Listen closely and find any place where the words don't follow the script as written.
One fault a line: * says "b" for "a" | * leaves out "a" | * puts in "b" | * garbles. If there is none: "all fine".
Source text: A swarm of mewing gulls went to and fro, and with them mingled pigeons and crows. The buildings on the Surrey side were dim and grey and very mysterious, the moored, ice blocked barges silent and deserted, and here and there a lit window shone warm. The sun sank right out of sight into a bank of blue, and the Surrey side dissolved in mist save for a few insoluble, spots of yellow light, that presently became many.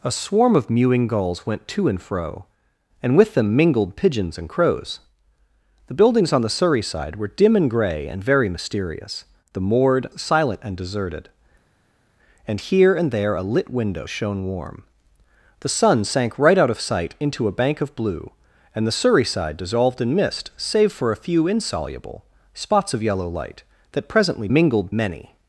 * leaves out "ice blocked barges"
* says "mingled" for "became"